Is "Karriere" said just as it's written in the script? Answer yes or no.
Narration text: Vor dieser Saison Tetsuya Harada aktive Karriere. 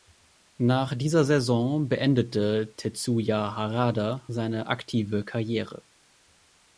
yes